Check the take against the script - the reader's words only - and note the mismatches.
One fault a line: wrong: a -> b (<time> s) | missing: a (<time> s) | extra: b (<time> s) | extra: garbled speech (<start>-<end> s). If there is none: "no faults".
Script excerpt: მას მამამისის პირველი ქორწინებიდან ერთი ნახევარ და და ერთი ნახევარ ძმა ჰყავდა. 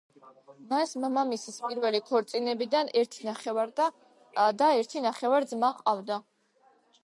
no faults